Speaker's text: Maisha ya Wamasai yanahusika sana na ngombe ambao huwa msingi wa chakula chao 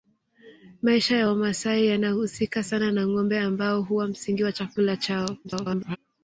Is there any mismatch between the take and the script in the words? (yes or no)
yes